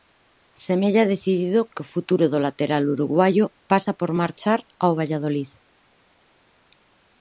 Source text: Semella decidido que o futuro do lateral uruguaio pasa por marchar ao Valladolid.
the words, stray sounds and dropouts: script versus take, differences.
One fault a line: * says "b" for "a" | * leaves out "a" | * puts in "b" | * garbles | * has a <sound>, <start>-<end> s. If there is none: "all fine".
all fine